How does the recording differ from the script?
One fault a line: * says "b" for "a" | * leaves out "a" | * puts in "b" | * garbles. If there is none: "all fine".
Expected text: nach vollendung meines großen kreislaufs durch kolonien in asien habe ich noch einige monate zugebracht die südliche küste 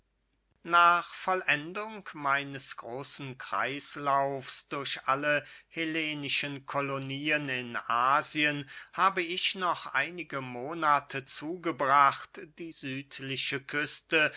* puts in "alle hellenischen"